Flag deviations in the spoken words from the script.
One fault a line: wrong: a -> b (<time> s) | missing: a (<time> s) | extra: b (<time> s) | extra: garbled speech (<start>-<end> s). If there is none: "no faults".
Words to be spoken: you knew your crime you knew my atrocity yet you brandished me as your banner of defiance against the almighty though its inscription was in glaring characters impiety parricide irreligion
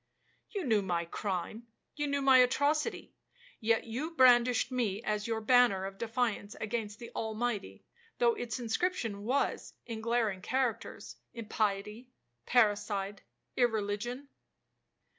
wrong: your -> my (0.8 s)